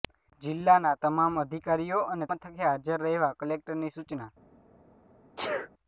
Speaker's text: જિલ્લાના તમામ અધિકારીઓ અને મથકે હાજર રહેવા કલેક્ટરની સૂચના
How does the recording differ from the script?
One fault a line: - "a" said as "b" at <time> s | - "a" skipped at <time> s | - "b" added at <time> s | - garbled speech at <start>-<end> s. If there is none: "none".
none